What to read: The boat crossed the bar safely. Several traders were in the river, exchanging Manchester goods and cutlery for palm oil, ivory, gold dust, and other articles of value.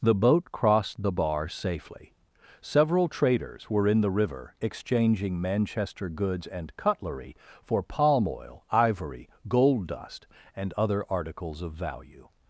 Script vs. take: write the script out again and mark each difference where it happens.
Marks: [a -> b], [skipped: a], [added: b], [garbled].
The boat crossed the bar safely. Several traders were in the river, exchanging Manchester goods and cutlery for palm oil, ivory, gold dust, and other articles of value.